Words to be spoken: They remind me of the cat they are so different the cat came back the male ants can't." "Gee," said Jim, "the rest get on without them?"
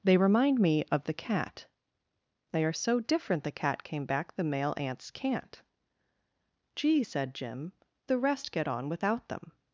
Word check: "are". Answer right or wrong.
right